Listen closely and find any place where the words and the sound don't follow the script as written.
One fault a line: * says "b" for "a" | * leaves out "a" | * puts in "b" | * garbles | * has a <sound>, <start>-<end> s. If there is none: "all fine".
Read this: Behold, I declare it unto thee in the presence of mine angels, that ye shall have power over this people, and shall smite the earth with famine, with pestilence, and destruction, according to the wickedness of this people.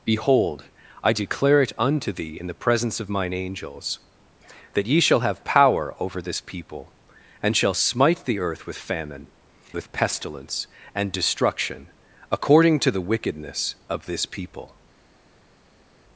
all fine